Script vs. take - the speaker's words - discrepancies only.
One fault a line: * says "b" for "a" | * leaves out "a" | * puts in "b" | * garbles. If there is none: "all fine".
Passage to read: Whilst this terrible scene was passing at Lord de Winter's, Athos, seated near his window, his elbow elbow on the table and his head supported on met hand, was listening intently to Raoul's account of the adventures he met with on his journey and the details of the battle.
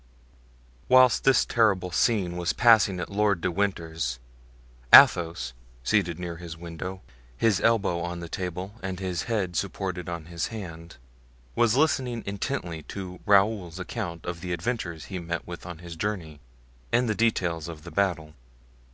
* leaves out "elbow"
* says "his" for "met"